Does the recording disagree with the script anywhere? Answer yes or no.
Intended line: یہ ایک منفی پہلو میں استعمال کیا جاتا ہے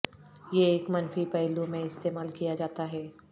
no